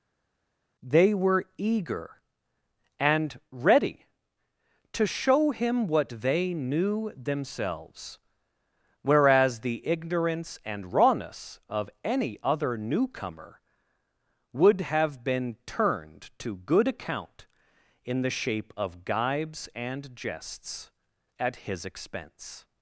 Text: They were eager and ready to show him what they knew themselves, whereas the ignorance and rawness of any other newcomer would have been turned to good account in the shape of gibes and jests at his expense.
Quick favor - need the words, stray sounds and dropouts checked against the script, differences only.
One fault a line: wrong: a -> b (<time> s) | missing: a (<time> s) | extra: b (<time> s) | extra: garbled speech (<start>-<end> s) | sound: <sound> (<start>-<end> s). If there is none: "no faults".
no faults